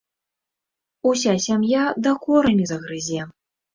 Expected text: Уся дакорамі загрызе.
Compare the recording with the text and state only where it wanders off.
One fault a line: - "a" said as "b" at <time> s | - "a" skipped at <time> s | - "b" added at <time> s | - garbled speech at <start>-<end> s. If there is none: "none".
- "сям'я" added at 1.4 s